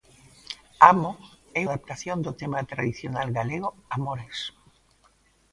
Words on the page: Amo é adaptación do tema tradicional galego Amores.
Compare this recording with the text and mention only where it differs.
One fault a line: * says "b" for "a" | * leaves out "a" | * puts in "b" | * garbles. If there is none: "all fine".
all fine